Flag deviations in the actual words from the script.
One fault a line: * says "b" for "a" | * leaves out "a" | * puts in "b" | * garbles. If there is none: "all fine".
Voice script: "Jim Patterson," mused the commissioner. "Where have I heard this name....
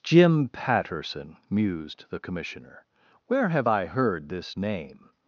all fine